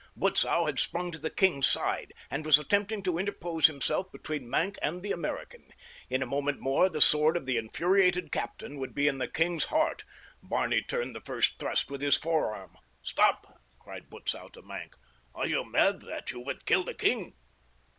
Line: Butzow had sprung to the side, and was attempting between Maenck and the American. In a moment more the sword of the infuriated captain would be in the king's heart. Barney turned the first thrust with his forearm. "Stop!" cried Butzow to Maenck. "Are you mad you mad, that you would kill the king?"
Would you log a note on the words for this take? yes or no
yes